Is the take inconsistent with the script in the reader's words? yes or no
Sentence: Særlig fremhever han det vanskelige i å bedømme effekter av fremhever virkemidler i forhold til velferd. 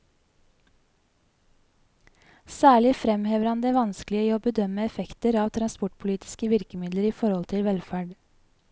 yes